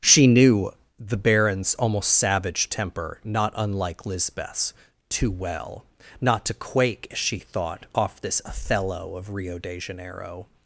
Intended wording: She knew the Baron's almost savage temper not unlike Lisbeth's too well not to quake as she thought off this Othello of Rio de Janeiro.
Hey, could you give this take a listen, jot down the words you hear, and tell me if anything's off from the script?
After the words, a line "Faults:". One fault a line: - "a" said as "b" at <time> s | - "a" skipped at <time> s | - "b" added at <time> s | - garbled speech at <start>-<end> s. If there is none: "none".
She knew the Baron's almost savage temper not unlike Lisbeth's too well not to quake as she thought off this Othello of Rio de Janeiro.
Faults:
none